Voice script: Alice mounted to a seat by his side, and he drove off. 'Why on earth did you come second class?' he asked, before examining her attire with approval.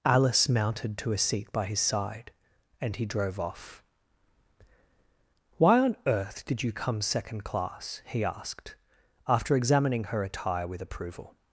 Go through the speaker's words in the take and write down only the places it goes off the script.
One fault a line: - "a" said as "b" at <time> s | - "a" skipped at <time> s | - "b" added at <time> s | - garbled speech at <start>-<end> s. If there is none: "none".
- "before" said as "after" at 9.3 s